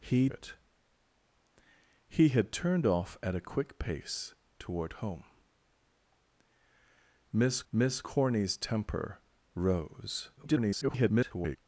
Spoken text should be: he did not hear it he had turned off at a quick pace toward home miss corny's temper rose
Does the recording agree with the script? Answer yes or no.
no